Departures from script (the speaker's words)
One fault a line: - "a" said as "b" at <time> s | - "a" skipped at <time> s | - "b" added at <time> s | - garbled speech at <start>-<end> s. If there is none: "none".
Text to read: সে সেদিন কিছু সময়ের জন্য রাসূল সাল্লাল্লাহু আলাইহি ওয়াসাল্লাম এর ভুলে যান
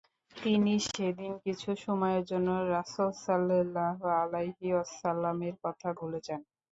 - "সে" said as "তিনি" at 0.3 s
- "কথা" added at 5.6 s